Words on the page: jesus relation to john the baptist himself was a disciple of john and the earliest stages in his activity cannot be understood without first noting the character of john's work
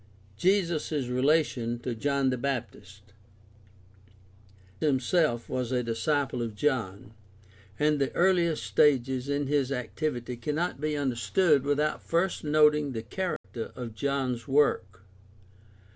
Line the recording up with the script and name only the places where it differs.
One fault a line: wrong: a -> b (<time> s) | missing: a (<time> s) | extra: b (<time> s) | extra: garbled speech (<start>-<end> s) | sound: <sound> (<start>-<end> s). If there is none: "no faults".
sound: dropout (13.4-13.4 s)